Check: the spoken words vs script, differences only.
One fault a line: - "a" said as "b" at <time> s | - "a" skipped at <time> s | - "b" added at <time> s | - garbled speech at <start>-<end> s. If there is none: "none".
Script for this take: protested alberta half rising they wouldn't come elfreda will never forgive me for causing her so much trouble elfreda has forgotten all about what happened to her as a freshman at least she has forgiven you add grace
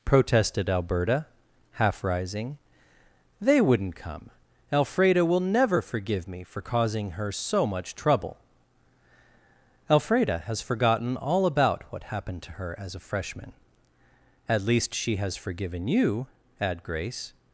none